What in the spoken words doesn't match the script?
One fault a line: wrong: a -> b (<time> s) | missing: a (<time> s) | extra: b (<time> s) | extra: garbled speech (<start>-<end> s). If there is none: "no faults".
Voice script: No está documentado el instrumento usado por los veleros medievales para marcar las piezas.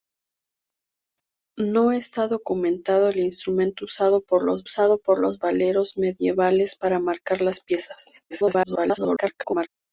extra: usado por los (4.6 s)
extra: garbled speech (8.3-9.7 s)